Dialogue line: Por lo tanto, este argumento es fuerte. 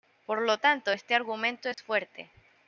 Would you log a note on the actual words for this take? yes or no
no